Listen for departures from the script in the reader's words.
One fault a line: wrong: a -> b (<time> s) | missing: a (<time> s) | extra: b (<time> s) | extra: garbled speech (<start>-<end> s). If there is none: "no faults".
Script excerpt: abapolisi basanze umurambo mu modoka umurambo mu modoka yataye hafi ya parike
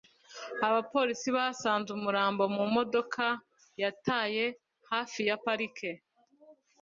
missing: umurambo mu modoka (3.2 s)